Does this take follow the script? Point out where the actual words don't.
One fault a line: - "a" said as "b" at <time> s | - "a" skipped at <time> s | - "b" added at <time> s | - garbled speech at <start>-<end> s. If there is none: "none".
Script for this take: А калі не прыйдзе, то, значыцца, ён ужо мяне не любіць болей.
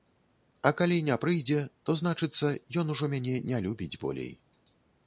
none